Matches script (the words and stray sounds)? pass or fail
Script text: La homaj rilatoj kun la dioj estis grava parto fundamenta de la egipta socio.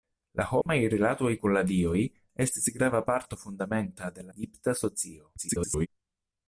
fail